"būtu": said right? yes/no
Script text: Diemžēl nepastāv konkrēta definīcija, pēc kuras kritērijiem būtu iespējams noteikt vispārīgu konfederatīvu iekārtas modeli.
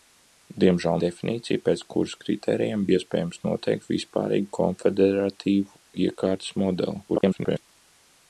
no